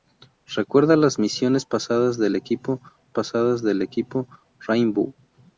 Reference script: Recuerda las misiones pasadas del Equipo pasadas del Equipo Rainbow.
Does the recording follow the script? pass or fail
pass